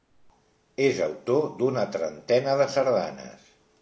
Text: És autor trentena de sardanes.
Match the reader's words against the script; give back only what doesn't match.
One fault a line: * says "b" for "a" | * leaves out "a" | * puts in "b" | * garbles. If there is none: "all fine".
* puts in "d'una"